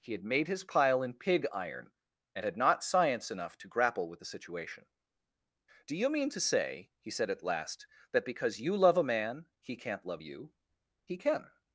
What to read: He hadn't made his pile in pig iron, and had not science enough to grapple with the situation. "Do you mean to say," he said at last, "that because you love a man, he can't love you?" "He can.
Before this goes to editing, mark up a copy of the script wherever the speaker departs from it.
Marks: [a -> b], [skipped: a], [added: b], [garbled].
He [hadn't -> had] made his pile in pig iron, and had not science enough to grapple with the situation. "Do you mean to say," he said at last, "that because you love a man, he can't love you?" "He can.